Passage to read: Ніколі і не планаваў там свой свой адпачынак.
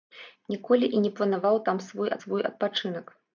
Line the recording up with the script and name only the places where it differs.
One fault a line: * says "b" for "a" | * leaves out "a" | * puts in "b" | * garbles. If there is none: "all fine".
all fine